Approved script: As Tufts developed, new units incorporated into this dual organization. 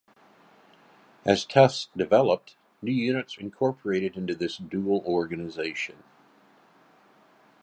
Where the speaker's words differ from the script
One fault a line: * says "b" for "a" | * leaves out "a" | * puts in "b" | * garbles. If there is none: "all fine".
all fine